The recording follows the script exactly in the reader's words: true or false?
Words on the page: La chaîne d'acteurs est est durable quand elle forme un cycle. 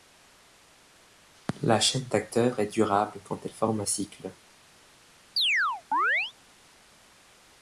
false